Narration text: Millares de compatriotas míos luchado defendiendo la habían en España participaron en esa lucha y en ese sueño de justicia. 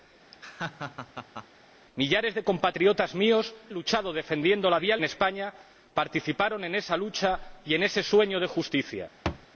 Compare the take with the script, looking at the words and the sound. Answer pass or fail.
fail